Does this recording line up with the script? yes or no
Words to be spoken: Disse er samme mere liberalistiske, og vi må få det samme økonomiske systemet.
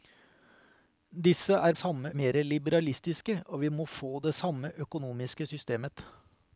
yes